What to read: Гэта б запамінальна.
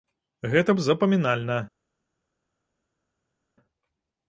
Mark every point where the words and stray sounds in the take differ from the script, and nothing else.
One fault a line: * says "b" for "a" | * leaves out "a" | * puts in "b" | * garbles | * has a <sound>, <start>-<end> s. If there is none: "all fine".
all fine